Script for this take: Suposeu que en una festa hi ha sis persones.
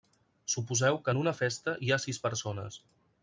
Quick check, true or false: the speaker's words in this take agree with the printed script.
true